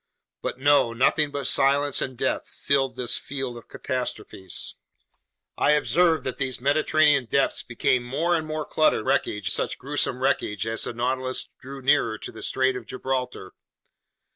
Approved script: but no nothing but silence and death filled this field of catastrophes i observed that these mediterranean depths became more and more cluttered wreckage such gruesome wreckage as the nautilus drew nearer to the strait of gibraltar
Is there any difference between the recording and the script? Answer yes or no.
no